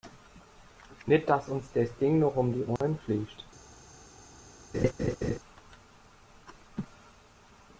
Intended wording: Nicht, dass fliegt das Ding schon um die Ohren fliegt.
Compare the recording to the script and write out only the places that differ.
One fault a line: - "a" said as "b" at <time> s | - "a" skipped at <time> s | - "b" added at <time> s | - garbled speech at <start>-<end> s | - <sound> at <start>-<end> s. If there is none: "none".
- "fliegt" said as "uns" at 1.5 s
- "schon" said as "noch" at 2.2 s
- dropout at 2.8-2.8 s
- laugh at 4.7-5.4 s